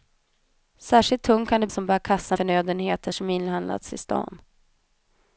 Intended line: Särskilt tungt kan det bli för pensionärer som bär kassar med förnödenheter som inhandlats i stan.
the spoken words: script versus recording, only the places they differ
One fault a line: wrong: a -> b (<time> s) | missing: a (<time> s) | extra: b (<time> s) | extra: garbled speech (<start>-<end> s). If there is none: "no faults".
missing: bli för pensionärer (1.7 s)
missing: med (2.4 s)